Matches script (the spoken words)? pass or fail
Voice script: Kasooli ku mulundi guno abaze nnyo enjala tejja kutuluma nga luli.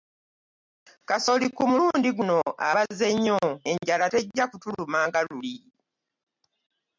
pass